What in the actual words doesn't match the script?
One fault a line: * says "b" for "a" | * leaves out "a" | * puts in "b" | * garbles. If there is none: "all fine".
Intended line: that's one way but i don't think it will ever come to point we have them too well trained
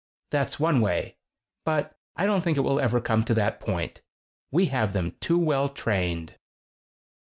* puts in "that"